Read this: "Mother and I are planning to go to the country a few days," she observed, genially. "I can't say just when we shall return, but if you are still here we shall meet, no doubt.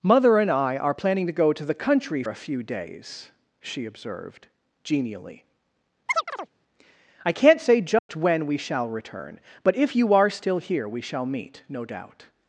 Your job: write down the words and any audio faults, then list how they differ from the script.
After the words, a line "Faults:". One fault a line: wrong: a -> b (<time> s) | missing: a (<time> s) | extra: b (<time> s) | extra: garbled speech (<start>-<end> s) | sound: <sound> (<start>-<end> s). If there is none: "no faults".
"Mother and I are planning to go to the country a few days," she observed, genially. "I can't say just when we shall return, but if you are still here we shall meet, no doubt.
Faults:
sound: chirp (6.1-6.5 s)
sound: dropout (8.0-8.1 s)